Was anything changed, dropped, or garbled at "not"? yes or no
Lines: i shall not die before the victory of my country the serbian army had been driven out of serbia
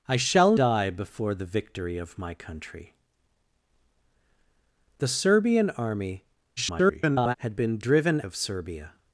yes